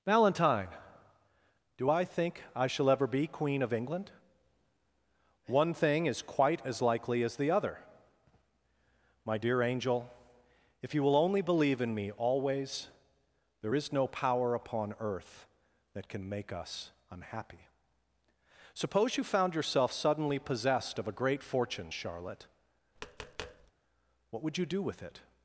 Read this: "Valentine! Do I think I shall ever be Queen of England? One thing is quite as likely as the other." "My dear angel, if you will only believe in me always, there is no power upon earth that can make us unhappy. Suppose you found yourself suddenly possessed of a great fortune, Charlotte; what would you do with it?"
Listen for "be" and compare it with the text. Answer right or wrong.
right